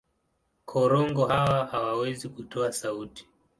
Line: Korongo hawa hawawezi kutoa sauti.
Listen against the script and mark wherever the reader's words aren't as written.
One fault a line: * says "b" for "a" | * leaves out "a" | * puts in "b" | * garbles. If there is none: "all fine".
all fine